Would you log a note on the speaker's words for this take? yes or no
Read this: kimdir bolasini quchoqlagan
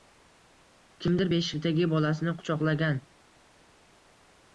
yes